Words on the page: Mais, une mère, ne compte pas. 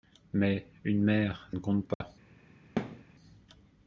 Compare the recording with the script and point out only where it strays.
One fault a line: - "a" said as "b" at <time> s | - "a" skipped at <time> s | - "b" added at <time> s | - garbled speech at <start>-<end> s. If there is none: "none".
none